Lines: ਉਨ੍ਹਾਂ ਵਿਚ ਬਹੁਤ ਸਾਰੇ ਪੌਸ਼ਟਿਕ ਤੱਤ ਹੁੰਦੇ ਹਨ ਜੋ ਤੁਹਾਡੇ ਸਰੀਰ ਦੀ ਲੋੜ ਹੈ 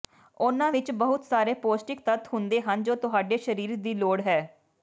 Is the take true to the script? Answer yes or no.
yes